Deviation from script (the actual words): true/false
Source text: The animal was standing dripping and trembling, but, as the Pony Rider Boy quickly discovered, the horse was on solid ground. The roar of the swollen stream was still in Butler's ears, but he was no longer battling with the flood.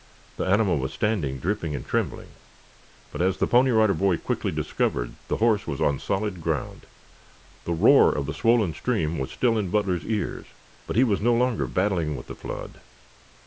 false